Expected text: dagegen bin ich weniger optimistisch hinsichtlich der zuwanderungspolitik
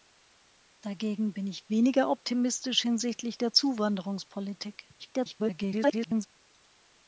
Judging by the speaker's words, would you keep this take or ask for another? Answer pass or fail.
fail